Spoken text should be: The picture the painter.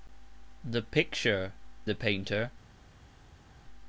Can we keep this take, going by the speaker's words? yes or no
yes